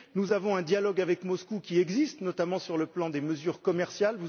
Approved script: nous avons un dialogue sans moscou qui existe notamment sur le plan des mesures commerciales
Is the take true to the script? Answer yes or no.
no